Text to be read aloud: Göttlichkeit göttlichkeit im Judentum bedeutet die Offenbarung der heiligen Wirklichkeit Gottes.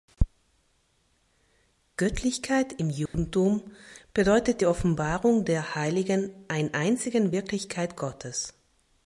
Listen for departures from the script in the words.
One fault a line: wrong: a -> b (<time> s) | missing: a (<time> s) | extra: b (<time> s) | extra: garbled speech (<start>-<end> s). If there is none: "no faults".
missing: göttlichkeit (2.7 s)
extra: ein einzigen (6.5 s)